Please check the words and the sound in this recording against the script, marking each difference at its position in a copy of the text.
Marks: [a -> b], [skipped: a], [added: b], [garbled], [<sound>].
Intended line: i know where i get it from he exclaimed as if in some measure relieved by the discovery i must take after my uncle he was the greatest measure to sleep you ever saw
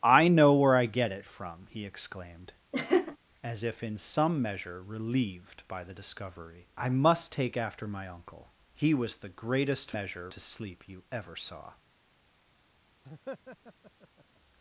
i know where i get it from he exclaimed [laugh] as if in some measure relieved by the discovery i must take after my uncle he was the greatest measure to sleep you ever saw [laugh]